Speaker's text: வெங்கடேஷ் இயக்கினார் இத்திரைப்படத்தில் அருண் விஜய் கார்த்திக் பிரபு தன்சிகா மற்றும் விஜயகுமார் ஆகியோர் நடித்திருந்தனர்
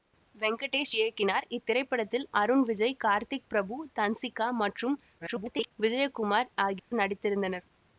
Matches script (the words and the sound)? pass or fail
fail